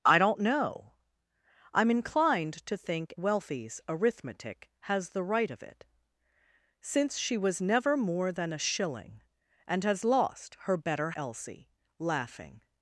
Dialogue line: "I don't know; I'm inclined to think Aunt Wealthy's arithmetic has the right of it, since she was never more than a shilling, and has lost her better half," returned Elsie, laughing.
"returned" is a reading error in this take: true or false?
true